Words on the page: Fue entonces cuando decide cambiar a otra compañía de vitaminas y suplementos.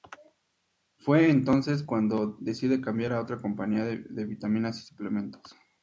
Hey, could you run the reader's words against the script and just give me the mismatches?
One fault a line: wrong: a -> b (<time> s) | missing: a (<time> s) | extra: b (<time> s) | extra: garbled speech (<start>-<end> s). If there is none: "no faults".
no faults